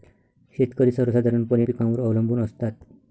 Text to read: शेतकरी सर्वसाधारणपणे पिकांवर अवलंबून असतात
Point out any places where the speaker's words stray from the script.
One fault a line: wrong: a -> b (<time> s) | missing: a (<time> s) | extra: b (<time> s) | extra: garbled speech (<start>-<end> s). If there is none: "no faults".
no faults